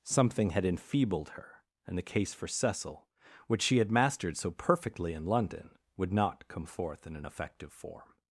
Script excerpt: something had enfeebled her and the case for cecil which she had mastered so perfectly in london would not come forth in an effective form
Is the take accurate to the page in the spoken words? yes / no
yes